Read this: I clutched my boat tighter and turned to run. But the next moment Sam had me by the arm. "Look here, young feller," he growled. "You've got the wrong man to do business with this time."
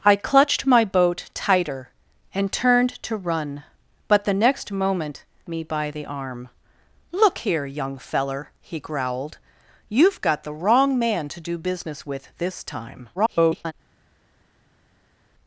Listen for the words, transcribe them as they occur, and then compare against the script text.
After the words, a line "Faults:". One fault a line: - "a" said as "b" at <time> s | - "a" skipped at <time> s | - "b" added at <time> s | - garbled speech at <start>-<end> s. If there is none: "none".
I clutched my boat tighter and turned to run. But the next moment Me by the arm. "Look here, young feller," he growled. "You've got the wrong man to do business with this time." [garbled]
Faults:
- "Sam had" skipped at 5.2 s
- garbled speech at 13.1-13.7 s